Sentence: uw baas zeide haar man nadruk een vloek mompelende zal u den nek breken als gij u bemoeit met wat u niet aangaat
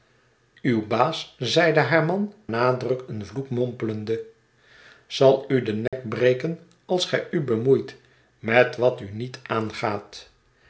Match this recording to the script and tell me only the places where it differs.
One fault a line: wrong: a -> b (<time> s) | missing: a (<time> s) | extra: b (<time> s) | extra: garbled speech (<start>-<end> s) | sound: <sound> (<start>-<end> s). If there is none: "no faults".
sound: dropout (5.9-5.9 s)